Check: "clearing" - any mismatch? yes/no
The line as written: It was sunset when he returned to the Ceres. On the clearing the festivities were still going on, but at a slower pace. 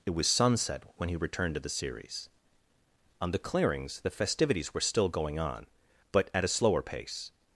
yes